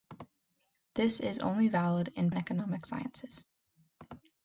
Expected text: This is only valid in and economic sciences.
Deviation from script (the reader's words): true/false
false